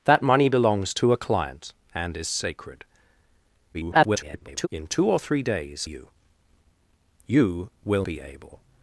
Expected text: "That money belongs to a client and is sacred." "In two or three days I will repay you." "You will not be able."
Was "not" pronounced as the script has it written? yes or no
no